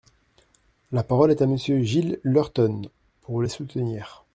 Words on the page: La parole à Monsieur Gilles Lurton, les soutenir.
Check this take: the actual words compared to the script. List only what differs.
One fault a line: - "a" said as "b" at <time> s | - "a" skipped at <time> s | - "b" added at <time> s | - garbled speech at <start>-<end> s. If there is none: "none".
- "est" added at 1.3 s
- "pour" added at 3.2 s